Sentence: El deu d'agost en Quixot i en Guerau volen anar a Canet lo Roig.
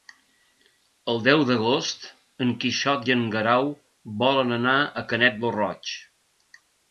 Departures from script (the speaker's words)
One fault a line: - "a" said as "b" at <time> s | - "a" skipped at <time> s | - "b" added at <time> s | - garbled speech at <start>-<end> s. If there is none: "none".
none